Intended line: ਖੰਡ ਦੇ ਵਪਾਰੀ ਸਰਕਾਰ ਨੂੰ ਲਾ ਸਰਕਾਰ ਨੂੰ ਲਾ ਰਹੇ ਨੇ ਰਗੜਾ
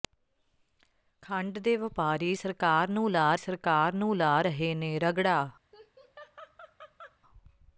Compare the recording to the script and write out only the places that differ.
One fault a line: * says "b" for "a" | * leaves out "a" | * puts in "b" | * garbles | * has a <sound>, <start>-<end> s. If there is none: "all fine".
* has a laugh, 5.7-7.2 s